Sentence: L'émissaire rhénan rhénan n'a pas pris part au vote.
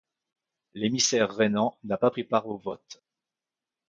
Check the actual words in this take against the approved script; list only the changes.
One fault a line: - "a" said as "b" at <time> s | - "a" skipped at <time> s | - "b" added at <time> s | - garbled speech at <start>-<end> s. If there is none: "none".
- "rhénan" skipped at 1.8 s